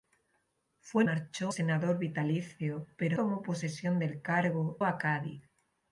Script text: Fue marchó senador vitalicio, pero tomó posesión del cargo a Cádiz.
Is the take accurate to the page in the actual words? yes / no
yes